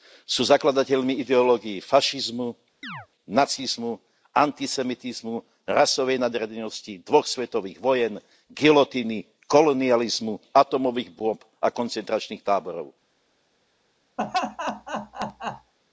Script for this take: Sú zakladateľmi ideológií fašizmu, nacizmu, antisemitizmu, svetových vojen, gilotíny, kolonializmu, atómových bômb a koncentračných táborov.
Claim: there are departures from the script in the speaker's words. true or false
true